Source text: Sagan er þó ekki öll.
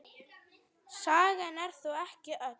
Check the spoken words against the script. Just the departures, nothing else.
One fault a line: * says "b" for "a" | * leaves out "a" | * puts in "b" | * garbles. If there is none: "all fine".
all fine